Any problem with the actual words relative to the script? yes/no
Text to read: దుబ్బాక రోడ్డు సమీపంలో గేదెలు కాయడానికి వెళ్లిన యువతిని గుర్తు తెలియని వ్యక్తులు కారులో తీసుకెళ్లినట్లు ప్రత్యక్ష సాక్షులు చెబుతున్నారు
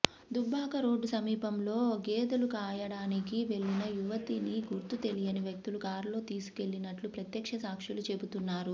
no